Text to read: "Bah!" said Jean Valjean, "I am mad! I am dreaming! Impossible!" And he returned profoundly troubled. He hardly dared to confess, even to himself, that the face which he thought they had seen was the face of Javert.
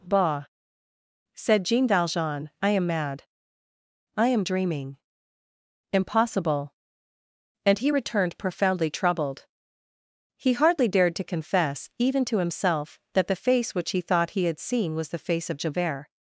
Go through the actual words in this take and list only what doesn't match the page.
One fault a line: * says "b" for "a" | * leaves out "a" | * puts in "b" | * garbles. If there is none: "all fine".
* says "he" for "they"